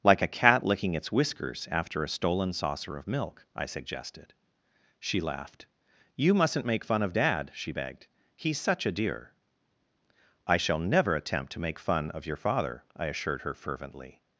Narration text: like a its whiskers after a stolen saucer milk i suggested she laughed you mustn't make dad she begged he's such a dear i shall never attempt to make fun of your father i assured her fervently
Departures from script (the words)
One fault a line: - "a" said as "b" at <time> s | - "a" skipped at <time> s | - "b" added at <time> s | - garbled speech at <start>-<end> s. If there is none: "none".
- "cat licking" added at 0.3 s
- "of" added at 3.0 s
- "fun of" added at 6.8 s